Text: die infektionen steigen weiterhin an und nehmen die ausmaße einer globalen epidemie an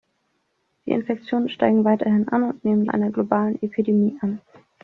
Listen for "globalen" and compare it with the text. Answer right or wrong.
right